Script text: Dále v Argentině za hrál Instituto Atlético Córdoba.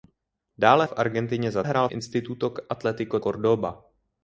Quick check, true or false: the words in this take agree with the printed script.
true